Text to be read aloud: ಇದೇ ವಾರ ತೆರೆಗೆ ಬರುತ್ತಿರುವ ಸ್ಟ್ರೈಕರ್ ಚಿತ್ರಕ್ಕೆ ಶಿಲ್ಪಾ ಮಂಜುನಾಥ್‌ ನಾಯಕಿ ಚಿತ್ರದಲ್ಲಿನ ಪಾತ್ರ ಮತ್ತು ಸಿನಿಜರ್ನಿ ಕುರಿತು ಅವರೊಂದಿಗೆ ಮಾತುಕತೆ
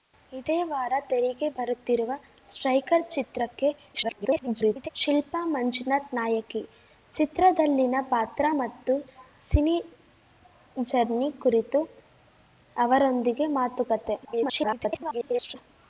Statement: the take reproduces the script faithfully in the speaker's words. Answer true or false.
false